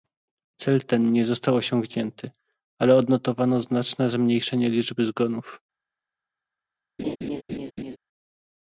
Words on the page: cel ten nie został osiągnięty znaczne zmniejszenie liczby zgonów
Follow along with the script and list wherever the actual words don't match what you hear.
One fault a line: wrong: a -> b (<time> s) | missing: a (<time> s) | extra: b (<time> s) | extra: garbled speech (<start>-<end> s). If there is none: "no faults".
extra: ale odnotowano (2.8 s)